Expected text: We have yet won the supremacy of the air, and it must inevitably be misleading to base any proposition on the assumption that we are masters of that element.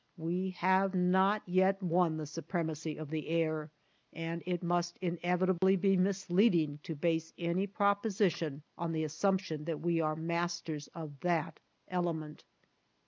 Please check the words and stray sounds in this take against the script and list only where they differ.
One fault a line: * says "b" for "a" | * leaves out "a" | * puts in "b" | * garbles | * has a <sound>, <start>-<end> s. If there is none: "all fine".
* puts in "not"
* has a dropout, 5.6-5.6 s